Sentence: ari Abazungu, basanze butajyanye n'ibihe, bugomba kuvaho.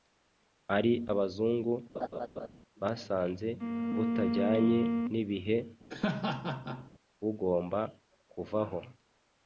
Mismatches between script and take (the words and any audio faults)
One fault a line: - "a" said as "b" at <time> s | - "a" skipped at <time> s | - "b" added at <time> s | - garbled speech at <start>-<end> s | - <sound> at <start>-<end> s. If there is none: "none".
- laugh at 1.9-2.5 s
- laugh at 5.9-6.9 s